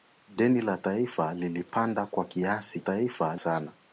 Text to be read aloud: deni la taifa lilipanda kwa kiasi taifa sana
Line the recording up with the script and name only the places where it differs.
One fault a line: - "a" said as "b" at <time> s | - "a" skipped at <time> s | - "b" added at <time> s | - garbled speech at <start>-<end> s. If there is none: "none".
none